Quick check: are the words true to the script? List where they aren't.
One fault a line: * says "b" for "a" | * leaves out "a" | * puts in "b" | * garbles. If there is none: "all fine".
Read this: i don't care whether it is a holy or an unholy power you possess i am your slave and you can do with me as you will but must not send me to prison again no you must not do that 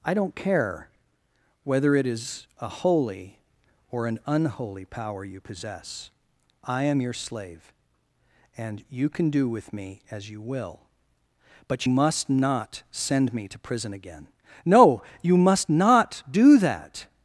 all fine